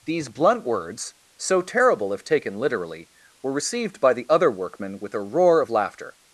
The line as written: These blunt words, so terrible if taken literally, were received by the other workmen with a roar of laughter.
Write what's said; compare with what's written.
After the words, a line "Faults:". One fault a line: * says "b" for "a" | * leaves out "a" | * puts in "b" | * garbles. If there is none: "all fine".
These blunt words, so terrible if taken literally, were received by the other workmen with a roar of laughter.
Faults:
all fine